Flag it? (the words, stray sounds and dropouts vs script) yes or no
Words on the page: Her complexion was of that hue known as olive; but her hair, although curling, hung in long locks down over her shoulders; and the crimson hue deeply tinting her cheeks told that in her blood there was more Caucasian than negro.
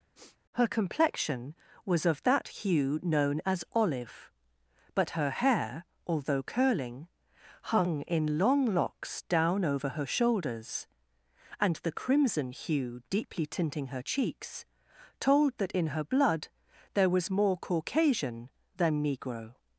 yes